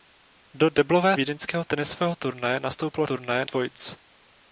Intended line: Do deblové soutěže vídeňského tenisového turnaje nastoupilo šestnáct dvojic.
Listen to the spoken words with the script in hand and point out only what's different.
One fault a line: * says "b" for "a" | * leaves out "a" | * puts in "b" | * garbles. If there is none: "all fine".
* leaves out "soutěže"
* says "turnaje" for "šestnáct"